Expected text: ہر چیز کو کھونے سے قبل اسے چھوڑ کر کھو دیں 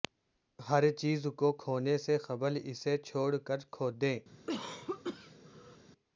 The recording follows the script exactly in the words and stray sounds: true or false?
false